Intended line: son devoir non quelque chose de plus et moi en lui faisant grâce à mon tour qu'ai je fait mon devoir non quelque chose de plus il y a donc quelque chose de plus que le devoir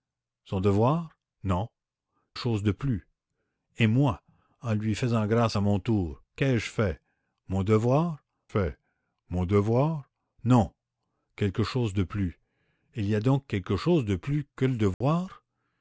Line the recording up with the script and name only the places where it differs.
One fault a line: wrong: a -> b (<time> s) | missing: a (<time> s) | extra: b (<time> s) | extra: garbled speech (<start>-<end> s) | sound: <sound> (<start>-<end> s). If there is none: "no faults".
missing: quelque (1.7 s)
extra: fait mon devoir (8.5 s)
sound: dropout (14.9-15.0 s)